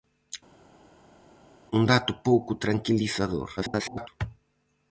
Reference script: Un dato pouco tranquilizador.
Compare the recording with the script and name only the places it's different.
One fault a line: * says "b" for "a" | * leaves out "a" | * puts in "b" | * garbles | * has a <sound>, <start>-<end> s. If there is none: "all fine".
* garbles